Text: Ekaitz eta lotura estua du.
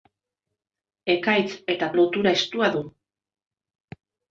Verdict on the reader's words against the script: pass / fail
pass